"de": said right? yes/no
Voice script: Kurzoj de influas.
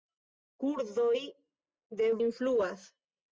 yes